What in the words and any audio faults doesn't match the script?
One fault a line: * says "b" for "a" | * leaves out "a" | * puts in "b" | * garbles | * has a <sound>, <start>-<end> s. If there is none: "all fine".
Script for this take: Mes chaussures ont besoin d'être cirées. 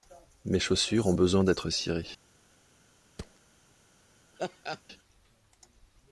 * has a thud, 3.2-3.4 s
* has a laugh, 4.4-4.8 s